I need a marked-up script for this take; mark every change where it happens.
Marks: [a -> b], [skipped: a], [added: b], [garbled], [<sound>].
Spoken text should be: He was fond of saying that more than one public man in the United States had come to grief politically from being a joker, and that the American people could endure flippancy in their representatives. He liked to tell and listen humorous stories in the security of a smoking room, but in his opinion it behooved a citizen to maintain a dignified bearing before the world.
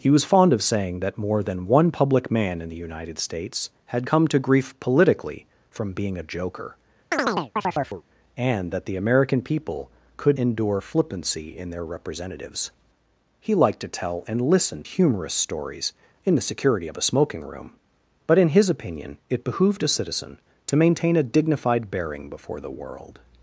He was fond of saying that more than one public man in the United States had come to grief politically from being a joker, [chirp] and that the American people could endure flippancy in their representatives. He liked to tell and listen humorous stories in the security of a smoking room, but in his opinion it behooved a citizen to maintain a dignified bearing before the world.